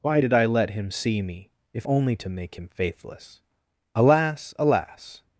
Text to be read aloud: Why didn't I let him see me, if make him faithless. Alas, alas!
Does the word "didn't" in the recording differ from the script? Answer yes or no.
yes